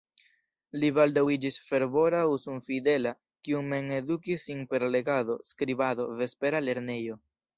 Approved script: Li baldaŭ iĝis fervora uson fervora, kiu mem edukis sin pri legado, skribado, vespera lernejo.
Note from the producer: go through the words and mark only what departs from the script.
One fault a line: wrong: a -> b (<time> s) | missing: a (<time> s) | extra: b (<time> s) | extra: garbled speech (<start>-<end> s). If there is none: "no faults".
wrong: fervora -> fidela (2.7 s)
wrong: pri -> per (4.7 s)